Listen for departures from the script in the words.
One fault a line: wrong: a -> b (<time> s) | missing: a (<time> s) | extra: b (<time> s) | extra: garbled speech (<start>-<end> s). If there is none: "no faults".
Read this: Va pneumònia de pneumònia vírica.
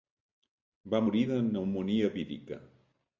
wrong: pneumònia -> morir (1.0 s)